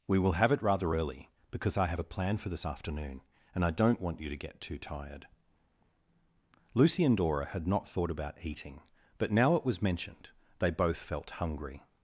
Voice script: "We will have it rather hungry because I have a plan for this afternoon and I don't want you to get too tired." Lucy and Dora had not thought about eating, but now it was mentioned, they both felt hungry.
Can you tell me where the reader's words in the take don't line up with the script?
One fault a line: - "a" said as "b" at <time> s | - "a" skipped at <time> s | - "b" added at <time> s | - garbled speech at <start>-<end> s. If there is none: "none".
- "hungry" said as "early" at 0.9 s